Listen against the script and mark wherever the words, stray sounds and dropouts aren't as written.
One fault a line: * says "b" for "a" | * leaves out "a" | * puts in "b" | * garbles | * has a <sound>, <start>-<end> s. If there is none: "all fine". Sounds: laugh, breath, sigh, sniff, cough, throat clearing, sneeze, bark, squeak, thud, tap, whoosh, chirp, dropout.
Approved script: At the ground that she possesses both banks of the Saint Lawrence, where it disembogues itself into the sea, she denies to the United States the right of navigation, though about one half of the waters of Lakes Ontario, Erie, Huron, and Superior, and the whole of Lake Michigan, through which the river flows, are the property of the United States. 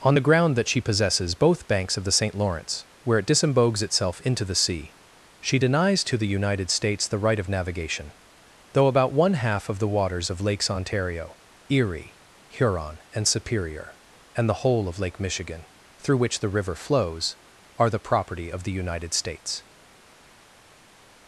* says "On" for "At"